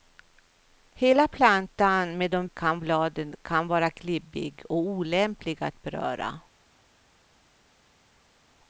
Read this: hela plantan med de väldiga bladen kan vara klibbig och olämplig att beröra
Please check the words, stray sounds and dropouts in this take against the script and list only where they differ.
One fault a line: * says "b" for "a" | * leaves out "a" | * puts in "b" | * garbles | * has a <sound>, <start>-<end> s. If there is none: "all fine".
* says "kan" for "väldiga"